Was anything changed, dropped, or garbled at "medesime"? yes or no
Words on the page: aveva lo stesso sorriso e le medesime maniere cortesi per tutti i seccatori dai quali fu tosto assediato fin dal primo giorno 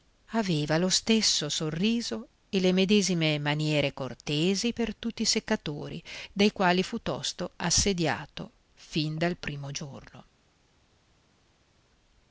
no